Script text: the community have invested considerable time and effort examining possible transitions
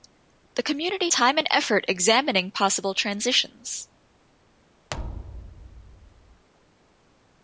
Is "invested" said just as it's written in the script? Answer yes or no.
no